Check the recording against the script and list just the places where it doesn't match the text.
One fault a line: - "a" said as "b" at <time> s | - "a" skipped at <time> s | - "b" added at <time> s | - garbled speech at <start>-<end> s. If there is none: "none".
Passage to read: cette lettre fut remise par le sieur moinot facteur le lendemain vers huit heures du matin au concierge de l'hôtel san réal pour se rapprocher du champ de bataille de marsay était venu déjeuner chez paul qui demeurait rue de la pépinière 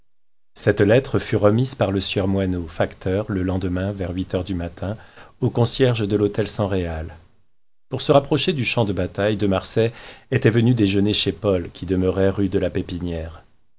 none